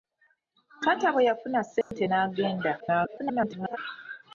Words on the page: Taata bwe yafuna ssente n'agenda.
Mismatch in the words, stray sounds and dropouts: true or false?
true